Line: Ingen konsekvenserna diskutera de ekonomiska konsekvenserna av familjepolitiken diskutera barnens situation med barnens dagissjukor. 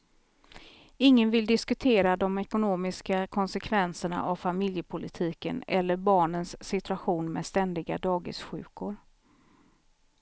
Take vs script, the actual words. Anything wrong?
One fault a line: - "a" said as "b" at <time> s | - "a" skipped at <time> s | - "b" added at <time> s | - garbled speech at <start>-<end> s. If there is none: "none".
- "konsekvenserna" said as "vill" at 1.3 s
- "diskutera" said as "eller" at 5.7 s
- "barnens" said as "ständiga" at 7.4 s